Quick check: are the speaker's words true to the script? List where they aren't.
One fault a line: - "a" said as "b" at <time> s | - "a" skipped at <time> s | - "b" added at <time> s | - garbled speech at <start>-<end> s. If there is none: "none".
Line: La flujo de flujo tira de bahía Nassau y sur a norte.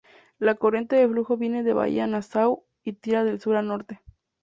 - "flujo" said as "corriente" at 0.6 s
- "tira" said as "viene" at 1.4 s
- "tira de" added at 2.9 s